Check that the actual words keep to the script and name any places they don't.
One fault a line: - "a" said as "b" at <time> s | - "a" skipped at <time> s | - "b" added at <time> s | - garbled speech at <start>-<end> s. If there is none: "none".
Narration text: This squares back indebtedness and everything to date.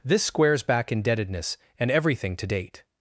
none